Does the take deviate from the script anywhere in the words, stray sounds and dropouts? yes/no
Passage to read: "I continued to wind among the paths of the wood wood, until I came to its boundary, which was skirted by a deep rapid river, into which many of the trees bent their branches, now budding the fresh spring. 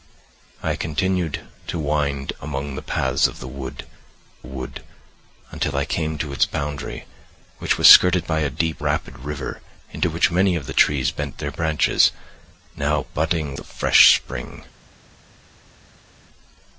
no